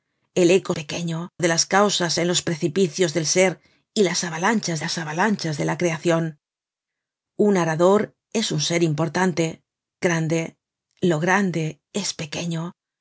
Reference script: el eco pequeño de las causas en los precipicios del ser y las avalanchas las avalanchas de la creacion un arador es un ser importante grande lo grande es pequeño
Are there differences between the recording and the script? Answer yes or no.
no